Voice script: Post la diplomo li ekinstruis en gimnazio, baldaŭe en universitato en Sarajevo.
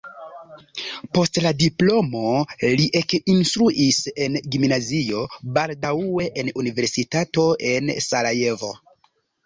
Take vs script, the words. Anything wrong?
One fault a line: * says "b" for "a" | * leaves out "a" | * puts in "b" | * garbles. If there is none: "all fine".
all fine